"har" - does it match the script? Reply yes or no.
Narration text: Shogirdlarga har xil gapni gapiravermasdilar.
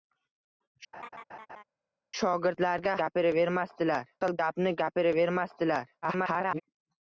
no